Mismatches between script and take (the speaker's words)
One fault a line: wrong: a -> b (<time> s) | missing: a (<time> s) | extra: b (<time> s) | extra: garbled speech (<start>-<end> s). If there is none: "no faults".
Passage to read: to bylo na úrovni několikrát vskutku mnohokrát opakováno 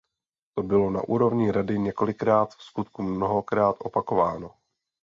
extra: rady (1.5 s)